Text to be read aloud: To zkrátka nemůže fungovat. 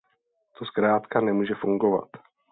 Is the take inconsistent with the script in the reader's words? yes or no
no